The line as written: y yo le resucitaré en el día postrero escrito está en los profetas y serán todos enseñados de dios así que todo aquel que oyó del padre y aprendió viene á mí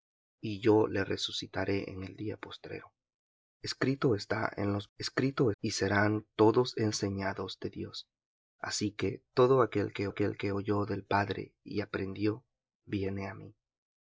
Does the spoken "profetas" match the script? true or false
false